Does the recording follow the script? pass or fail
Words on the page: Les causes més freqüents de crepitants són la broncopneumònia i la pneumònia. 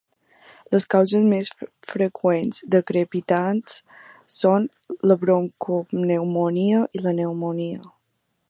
pass